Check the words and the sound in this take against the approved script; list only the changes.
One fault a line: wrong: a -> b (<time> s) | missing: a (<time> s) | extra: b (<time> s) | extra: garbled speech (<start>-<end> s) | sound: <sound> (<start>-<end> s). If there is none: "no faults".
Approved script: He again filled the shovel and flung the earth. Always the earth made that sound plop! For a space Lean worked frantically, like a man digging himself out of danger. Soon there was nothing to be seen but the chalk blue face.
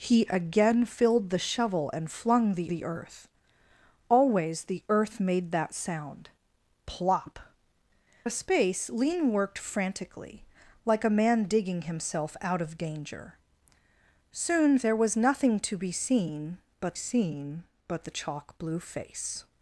extra: the (2.7 s)
missing: For (7.4 s)
extra: seen but (16.9 s)